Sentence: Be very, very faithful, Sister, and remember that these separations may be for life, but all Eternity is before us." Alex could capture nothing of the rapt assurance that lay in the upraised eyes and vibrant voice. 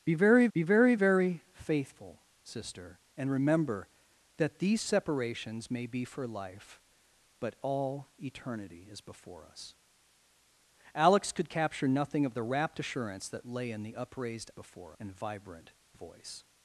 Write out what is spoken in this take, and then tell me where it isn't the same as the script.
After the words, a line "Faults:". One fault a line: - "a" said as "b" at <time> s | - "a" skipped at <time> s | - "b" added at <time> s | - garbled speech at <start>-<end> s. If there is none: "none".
Be very be very, very faithful, Sister, and remember that these separations may be for life, but all Eternity is before us." Alex could capture nothing of the rapt assurance that lay in the upraised before and vibrant voice.
Faults:
- "be" added at 0.5 s
- "very" added at 0.9 s
- "eyes" said as "before" at 14.5 s